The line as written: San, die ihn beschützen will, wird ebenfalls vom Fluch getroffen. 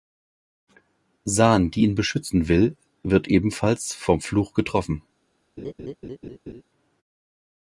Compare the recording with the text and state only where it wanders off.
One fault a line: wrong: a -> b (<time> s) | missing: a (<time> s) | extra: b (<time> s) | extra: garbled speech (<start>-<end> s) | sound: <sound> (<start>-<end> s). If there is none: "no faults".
sound: laugh (5.6-6.6 s)